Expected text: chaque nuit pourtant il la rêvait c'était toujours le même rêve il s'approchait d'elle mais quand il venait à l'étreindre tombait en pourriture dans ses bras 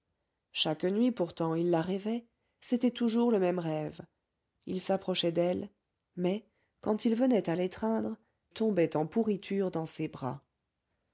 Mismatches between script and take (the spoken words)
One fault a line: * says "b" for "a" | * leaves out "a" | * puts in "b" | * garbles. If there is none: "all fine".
all fine